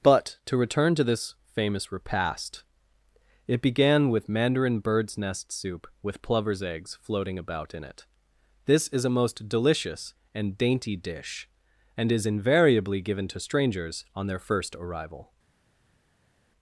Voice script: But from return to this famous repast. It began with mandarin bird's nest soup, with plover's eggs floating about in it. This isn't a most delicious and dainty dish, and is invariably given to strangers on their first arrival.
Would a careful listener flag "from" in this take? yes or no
yes